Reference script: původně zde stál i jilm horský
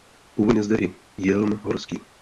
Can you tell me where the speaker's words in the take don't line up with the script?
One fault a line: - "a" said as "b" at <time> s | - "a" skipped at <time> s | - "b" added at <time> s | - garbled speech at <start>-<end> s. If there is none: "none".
- "stál" skipped at 0.8 s